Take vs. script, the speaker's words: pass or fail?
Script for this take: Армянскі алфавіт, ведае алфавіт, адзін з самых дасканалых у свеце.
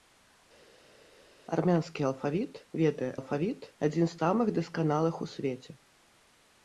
pass